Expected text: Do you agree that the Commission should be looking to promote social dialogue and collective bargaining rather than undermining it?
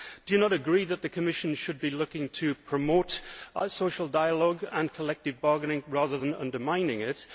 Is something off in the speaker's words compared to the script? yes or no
yes